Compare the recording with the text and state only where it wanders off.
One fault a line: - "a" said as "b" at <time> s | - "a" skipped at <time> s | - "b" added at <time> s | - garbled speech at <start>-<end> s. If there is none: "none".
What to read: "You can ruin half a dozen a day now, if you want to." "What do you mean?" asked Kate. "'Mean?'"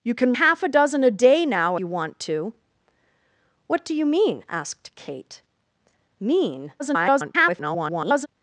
- "ruin" skipped at 0.3 s
- "if" skipped at 1.8 s
- garbled speech at 6.8-8.3 s